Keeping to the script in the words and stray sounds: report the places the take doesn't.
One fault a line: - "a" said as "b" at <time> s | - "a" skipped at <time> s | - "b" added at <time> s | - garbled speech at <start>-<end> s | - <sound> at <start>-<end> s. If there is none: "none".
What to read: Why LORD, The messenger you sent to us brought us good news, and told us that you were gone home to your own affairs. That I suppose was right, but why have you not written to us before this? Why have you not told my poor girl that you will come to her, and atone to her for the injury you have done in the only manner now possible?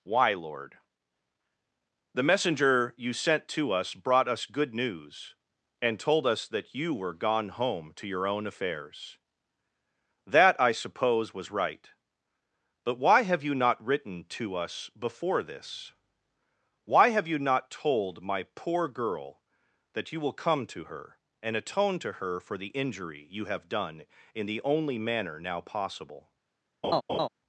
- laugh at 26.8-27.3 s